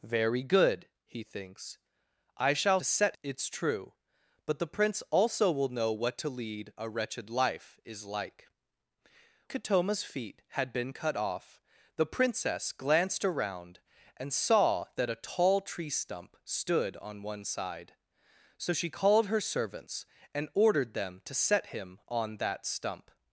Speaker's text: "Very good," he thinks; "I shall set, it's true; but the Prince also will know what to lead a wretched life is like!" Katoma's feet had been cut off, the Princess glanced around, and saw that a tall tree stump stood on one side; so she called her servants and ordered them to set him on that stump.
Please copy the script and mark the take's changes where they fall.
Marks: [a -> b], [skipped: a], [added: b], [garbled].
"Very good," he thinks; "I shall set, it's true; but the Prince also will know what to lead a wretched life is like!" Katoma's feet had been cut off, the Princess glanced around, and saw that a tall tree stump stood on one side; so she called her servants and ordered them to set him on that stump.